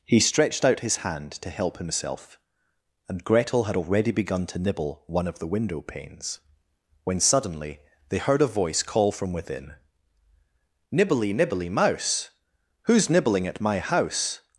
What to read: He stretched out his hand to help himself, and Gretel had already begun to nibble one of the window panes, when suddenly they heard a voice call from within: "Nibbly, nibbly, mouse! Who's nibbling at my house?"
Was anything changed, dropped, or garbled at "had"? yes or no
no